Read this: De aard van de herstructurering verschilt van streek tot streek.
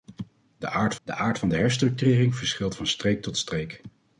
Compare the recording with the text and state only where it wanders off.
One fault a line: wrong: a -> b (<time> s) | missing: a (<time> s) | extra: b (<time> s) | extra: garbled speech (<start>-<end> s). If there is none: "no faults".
extra: de aard (1.0 s)